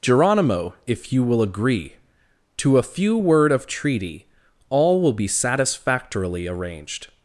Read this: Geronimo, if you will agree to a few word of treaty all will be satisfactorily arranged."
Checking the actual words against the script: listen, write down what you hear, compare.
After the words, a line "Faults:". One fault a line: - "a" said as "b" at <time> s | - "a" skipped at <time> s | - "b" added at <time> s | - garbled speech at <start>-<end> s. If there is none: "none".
Geronimo, if you will agree to a few word of treaty all will be satisfactorily arranged."
Faults:
none